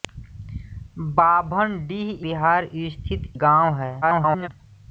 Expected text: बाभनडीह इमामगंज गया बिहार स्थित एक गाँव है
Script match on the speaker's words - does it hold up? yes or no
no